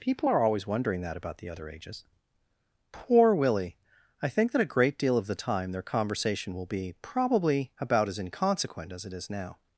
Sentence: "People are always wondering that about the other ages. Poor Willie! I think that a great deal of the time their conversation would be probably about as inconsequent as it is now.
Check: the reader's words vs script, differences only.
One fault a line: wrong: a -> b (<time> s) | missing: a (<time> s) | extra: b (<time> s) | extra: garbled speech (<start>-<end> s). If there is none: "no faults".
wrong: would -> will (6.5 s)